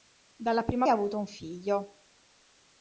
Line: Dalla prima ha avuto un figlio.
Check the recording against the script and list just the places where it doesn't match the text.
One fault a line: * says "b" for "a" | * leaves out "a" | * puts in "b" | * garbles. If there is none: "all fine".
all fine